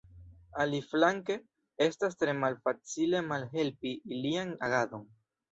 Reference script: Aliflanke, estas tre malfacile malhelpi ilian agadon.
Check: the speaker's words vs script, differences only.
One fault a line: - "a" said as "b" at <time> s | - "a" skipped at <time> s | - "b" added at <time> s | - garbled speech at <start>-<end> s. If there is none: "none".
none